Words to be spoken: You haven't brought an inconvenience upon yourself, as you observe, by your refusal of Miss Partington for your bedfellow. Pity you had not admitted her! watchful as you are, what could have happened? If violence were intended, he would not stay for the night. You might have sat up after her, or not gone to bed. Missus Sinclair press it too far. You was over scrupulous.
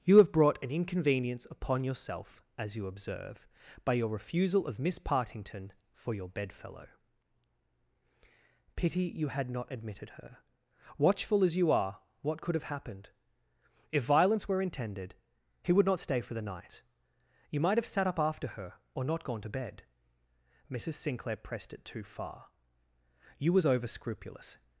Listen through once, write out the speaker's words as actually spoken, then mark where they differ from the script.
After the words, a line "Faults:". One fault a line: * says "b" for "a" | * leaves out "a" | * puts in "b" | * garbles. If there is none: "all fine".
You have brought an inconvenience upon yourself, as you observe, by your refusal of Miss Partington for your bedfellow. Pity you had not admitted her! watchful as you are, what could have happened? If violence were intended, he would not stay for the night. You might have sat up after her, or not gone to bed. Missus Sinclair pressed it too far. You was over scrupulous.
Faults:
* says "have" for "haven't"
* says "pressed" for "press"